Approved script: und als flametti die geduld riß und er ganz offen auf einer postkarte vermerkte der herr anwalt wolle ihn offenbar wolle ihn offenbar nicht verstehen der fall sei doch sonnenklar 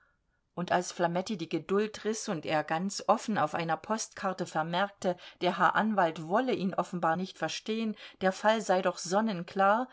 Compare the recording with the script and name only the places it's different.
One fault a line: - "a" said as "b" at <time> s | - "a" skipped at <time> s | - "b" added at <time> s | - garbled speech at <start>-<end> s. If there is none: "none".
- "wolle ihn offenbar" skipped at 7.2 s